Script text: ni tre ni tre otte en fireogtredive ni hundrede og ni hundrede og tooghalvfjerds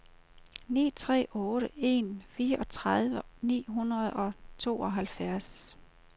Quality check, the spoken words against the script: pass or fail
fail